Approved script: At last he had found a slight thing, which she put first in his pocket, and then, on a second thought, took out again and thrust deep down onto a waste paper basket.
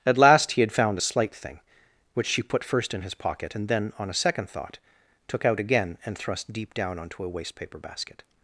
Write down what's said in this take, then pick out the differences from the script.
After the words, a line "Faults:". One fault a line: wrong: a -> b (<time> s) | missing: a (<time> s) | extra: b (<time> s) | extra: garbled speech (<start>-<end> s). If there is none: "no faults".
At last he had found a slight thing, which she put first in his pocket, and then, on a second thought, took out again and thrust deep down onto a waste paper basket.
Faults:
no faults